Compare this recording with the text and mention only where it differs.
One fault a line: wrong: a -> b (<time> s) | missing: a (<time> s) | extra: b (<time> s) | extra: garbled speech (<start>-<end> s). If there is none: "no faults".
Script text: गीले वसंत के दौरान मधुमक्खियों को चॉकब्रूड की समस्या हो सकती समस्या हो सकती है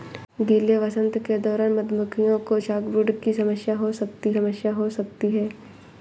no faults